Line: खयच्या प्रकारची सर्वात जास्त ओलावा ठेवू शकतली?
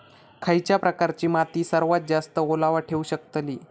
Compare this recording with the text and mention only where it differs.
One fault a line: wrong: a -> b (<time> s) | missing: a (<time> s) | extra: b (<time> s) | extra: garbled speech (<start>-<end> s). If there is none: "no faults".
extra: माती (1.2 s)